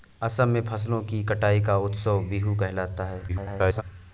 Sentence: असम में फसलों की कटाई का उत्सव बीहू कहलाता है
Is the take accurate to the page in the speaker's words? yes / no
no